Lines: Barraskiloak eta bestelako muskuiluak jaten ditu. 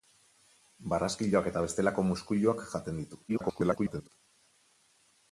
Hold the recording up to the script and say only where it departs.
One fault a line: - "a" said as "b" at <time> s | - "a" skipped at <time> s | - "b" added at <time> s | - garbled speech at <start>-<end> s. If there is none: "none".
- garbled speech at 3.3-4.1 s